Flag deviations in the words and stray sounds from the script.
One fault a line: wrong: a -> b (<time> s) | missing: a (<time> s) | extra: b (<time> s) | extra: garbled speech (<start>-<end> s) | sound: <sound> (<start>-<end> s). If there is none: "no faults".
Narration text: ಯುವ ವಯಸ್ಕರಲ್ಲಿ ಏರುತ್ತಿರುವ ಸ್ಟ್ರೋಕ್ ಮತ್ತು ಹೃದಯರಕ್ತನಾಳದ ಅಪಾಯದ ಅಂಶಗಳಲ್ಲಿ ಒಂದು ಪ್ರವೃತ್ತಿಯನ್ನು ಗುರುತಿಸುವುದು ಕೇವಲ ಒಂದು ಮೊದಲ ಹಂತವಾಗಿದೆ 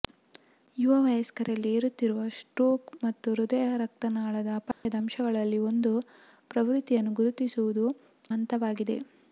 sound: dropout (4.7-4.9 s)
missing: ಕೇವಲ ಒಂದು ಮೊದಲ (7.9 s)